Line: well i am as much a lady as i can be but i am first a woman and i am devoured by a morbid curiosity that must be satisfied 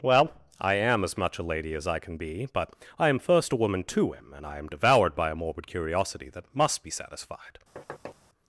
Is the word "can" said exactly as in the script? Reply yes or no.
yes